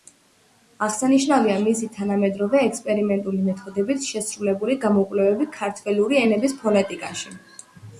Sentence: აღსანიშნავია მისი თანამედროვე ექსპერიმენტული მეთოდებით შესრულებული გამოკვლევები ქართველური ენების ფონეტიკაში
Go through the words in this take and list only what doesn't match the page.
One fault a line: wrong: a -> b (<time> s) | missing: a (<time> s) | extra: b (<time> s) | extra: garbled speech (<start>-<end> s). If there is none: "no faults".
no faults